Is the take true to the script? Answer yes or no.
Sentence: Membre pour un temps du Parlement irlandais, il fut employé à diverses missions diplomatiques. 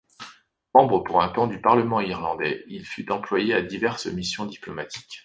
yes